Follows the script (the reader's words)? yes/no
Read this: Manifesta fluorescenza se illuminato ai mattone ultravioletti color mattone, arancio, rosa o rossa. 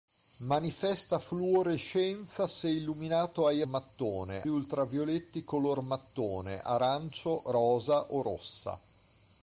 yes